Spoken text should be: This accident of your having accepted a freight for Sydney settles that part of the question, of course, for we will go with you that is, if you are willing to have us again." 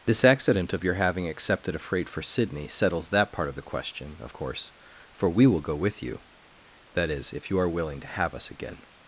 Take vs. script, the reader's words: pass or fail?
pass